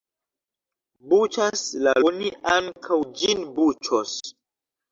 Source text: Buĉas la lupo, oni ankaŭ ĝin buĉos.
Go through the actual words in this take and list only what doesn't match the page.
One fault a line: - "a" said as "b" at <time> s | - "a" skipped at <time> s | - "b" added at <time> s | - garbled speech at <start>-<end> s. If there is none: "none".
- "lupo" skipped at 1.9 s